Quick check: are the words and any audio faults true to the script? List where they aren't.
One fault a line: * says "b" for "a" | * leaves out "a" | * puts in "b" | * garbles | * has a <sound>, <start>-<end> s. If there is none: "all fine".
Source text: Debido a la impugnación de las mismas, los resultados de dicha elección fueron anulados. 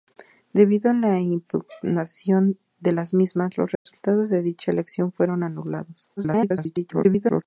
* has a dropout, 3.8-3.9 s
* garbles